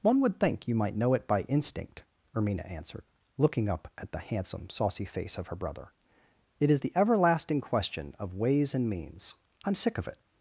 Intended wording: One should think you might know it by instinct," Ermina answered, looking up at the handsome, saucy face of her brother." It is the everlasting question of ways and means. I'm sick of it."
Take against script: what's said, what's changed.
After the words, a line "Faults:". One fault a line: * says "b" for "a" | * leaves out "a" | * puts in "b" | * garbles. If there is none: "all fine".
One would think you might know it by instinct," Ermina answered, looking up at the handsome, saucy face of her brother." It is the everlasting question of ways and means. I'm sick of it."
Faults:
* says "would" for "should"